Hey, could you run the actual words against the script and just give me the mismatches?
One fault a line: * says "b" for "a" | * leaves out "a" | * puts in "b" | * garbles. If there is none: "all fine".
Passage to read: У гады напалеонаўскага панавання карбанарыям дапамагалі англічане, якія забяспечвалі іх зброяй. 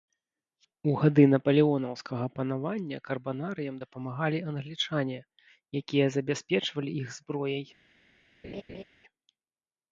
all fine